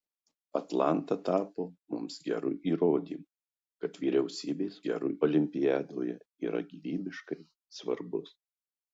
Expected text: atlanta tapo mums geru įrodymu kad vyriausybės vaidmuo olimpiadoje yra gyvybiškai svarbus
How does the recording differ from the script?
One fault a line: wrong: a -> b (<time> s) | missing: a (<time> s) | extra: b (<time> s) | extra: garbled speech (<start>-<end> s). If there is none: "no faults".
wrong: vaidmuo -> geru (4.9 s)